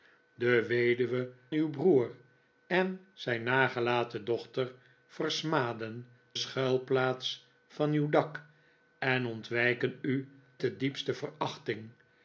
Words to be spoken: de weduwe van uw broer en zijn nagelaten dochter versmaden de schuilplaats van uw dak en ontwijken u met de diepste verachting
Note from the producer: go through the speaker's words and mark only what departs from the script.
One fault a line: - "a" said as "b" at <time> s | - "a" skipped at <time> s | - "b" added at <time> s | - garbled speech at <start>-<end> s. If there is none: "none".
- "van" skipped at 1.3 s
- "de" skipped at 6.1 s
- "met" skipped at 10.3 s